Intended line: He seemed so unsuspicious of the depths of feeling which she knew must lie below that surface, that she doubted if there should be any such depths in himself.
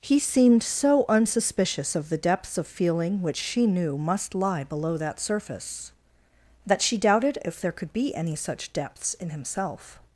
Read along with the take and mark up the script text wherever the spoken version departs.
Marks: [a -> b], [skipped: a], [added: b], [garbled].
He seemed so unsuspicious of the depths of feeling which she knew must lie below that surface, that she doubted if there [should -> could] be any such depths in himself.